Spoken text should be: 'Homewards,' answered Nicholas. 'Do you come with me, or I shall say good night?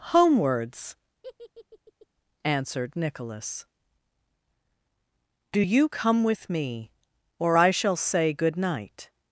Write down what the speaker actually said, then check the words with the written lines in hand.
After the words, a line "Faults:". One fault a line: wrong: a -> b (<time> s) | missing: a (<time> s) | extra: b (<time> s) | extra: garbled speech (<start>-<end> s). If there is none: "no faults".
'Homewards,' answered Nicholas. 'Do you come with me, or I shall say good night?
Faults:
no faults